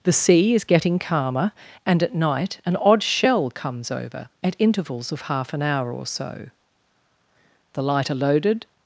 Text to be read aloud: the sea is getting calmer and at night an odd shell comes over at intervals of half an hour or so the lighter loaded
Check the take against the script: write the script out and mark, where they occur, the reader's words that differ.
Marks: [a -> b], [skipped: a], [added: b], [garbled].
the sea is getting calmer and at night an odd shell comes over at intervals of half an hour or so the lighter loaded